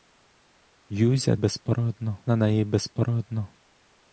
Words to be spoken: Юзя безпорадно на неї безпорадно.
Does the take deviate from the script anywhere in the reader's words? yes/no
no